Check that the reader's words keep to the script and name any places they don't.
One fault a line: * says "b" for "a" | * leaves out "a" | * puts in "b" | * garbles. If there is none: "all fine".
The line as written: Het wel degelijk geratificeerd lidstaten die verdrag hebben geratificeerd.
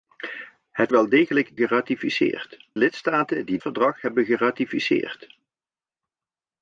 all fine